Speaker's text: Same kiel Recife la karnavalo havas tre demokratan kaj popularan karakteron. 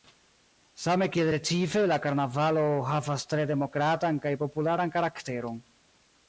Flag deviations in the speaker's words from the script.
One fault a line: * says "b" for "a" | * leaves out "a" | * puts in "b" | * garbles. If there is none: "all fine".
all fine